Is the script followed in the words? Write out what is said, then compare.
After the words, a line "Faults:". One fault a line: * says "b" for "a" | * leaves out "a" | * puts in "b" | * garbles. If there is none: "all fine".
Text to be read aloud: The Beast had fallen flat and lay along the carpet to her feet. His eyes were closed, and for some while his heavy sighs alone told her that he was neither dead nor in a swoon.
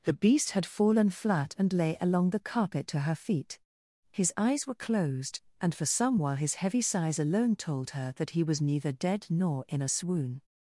The Beast had fallen flat and lay along the carpet to her feet. His eyes were closed, and for some while his heavy sighs alone told her that he was neither dead nor in a swoon.
Faults:
all fine